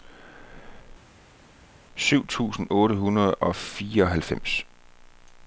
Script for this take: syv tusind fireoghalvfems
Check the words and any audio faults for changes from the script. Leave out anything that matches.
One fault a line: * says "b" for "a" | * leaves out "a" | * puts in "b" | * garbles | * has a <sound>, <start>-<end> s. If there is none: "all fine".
* puts in "otte hundrede og"